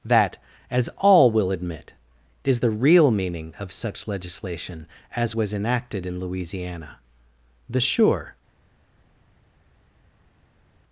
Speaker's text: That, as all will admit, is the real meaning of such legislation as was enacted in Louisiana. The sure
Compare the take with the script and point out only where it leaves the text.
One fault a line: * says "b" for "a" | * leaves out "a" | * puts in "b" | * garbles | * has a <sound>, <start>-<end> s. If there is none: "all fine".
all fine